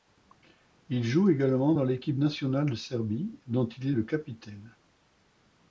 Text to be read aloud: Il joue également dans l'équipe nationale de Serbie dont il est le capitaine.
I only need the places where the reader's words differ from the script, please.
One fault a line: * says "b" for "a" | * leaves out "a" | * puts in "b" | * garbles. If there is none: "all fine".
all fine